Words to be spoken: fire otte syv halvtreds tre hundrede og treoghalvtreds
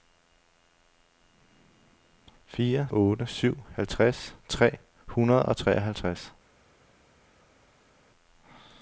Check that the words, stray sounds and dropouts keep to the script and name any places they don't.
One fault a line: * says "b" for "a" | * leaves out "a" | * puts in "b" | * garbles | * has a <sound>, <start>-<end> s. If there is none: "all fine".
all fine